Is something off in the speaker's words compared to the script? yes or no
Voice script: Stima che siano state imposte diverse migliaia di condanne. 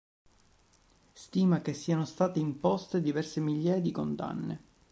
no